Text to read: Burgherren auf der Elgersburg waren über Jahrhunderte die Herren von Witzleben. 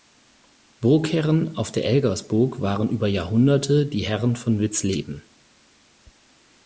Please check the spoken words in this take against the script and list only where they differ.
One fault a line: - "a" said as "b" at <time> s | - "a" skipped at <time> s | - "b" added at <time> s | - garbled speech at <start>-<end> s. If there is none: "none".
none